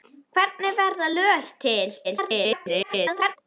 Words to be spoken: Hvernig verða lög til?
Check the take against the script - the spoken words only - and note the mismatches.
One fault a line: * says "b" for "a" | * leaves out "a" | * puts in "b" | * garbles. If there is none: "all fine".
* garbles